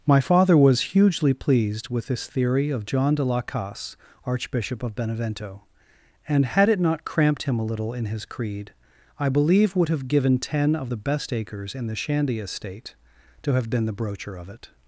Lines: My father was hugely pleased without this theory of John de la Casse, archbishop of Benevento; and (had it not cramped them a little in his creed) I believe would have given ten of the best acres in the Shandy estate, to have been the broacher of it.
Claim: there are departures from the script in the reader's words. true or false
true